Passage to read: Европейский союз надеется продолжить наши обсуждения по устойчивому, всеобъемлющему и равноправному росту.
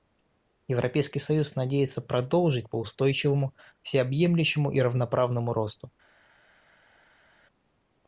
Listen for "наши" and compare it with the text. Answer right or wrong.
wrong